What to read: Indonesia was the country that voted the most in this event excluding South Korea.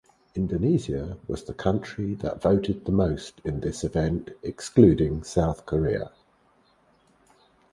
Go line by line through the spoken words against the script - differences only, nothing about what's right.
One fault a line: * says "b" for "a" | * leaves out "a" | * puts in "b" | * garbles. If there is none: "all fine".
all fine